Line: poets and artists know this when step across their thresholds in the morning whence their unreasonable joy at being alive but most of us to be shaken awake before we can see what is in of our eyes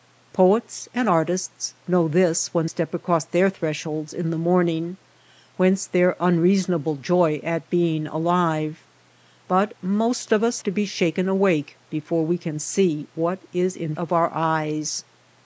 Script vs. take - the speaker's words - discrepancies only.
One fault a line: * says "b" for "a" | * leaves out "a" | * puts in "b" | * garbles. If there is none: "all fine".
all fine